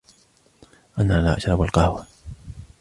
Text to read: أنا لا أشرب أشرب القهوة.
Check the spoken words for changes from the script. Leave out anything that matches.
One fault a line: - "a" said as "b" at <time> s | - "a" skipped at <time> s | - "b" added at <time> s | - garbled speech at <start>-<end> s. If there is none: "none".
- "أشرب" skipped at 1.6 s